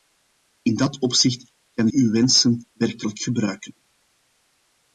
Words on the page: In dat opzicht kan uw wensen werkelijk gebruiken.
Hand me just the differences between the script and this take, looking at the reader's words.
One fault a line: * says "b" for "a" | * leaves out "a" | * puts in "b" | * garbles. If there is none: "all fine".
all fine